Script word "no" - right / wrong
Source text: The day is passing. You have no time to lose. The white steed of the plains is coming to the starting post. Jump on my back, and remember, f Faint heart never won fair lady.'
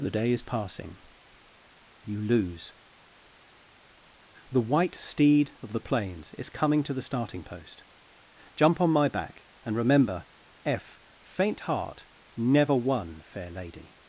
wrong